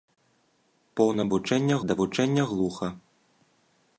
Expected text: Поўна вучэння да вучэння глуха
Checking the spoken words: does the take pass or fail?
pass